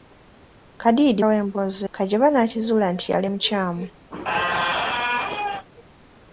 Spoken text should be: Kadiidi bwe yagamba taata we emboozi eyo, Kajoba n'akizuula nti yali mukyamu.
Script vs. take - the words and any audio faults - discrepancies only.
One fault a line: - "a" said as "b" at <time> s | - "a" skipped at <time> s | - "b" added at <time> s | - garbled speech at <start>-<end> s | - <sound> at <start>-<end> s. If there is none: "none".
- "bwe yagamba taata" skipped at 1.2 s
- "eyo" skipped at 1.8 s
- squeak at 4.1-5.7 s